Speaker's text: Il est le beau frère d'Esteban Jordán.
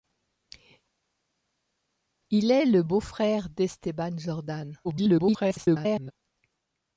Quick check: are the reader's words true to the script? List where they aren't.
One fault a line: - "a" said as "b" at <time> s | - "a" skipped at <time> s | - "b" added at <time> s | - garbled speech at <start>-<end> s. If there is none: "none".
- garbled speech at 4.8-6.1 s